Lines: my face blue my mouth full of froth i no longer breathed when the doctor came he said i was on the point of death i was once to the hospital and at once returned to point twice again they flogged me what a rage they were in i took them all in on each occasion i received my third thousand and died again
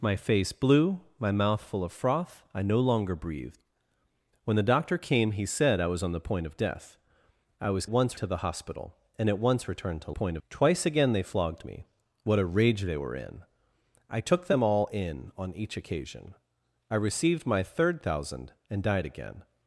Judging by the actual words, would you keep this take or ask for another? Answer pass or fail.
pass